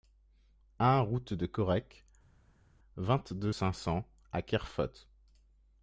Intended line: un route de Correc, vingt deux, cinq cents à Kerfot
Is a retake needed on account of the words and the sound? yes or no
no